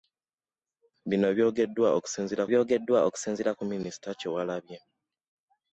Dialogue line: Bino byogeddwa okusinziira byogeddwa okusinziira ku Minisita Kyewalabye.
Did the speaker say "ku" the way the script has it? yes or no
yes